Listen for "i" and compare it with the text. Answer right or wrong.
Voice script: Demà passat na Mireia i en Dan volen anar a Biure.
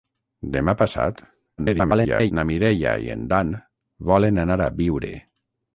right